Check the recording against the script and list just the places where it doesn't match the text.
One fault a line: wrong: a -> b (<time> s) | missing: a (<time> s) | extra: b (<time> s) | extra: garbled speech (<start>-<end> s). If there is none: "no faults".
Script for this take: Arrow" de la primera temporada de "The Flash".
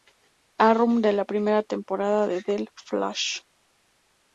no faults